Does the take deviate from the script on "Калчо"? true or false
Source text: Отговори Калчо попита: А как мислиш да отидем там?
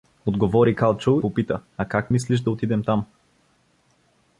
false